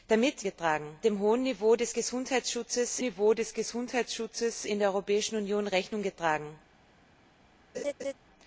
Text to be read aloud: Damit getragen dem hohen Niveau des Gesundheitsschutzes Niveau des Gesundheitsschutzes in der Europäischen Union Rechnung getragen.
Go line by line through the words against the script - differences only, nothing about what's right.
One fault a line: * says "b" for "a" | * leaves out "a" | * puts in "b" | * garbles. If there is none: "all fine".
all fine